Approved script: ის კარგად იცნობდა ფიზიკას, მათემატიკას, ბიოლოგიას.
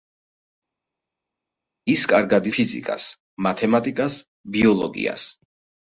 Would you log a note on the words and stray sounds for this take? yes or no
yes